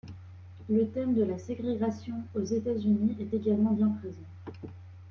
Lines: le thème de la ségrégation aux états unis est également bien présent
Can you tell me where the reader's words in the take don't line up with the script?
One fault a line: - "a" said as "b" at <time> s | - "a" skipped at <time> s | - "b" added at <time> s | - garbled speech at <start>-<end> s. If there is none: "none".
none